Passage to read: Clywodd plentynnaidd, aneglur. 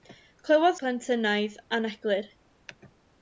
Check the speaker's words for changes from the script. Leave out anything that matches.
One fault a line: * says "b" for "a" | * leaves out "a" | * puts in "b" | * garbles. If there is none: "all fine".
all fine